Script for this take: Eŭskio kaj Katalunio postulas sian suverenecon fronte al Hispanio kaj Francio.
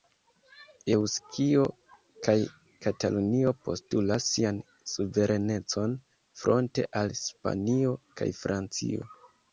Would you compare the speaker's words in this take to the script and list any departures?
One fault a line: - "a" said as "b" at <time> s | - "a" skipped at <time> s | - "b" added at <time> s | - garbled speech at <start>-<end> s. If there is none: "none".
none